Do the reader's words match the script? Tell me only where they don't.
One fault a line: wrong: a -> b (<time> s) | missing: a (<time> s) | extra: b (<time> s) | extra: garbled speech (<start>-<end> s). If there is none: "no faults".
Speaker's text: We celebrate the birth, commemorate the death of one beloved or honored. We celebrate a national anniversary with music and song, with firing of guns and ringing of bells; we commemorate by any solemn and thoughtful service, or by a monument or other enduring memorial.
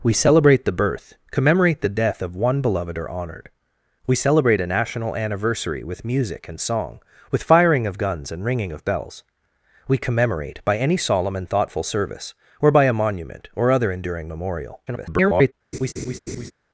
extra: garbled speech (14.9-15.5 s)